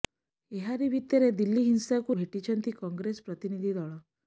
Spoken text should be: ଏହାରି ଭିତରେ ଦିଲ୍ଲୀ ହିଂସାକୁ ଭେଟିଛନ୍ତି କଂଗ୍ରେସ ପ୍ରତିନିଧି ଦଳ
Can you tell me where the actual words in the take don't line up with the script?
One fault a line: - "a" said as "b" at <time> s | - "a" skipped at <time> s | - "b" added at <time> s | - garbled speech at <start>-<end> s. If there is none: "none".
none